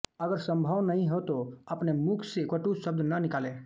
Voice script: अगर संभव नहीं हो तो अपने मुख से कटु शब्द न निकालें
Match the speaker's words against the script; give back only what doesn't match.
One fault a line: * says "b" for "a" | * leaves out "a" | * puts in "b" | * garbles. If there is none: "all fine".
all fine